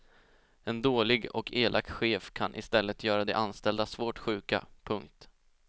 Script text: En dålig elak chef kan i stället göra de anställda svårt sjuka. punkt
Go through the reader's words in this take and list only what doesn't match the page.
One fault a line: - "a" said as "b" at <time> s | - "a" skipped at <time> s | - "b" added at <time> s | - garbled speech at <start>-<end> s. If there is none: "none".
- "och" added at 1.4 s